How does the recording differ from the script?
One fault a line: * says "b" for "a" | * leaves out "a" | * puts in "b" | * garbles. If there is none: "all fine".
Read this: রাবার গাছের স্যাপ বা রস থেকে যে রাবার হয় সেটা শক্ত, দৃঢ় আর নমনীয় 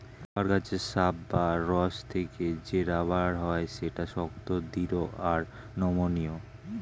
all fine